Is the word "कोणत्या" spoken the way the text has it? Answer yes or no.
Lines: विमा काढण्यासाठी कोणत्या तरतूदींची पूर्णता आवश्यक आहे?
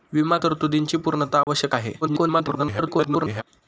no